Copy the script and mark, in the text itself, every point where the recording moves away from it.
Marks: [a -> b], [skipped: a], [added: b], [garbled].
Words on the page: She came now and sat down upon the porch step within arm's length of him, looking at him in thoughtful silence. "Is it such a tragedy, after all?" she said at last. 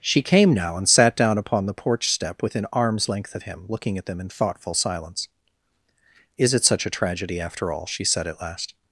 She came now and sat down upon the porch step within arm's length of him, looking at [him -> them] in thoughtful silence. "Is it such a tragedy, after all?" she said at last.